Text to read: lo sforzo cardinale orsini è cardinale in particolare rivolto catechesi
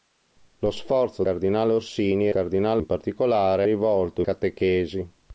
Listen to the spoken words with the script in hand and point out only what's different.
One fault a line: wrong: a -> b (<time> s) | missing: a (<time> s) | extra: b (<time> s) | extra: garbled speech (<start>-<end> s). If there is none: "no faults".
no faults